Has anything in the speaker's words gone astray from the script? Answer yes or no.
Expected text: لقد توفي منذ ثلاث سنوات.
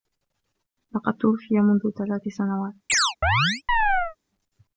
no